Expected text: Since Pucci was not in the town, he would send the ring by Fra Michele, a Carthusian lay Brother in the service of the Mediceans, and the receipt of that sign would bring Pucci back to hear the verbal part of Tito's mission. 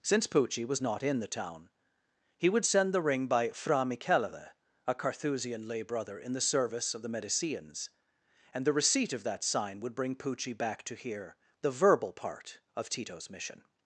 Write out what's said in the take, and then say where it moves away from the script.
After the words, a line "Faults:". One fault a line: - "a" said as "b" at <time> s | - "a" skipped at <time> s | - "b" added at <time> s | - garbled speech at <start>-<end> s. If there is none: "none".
Since Pucci was not in the town, he would send the ring by Fra Michele, a Carthusian lay Brother in the service of the Mediceans, and the receipt of that sign would bring Pucci back to hear the verbal part of Tito's mission.
Faults:
none